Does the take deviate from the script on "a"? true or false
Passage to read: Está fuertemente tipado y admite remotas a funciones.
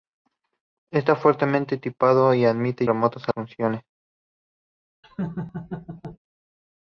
false